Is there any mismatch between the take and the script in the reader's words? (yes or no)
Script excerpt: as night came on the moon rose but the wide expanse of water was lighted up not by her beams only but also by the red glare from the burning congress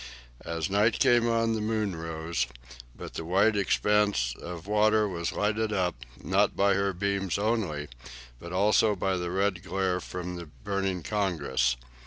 no